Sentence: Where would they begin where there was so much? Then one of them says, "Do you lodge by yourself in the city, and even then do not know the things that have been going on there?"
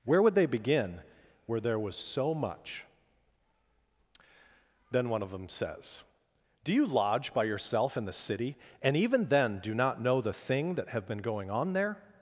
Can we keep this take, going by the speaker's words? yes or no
no